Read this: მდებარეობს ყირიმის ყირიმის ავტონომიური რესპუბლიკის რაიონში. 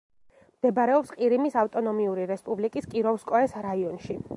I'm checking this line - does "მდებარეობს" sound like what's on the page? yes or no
yes